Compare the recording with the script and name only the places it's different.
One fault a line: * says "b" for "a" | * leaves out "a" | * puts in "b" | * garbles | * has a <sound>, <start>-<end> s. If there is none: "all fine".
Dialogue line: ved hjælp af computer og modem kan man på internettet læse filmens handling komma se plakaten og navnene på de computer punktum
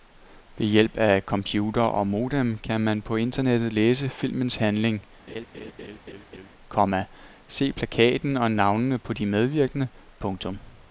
* has a laugh, 5.3-6.5 s
* says "medvirkende" for "computer"